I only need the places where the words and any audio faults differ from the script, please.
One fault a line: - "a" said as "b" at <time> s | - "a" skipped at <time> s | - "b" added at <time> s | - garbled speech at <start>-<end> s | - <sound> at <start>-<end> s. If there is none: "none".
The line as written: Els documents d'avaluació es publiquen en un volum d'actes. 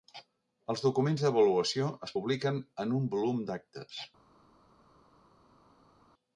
none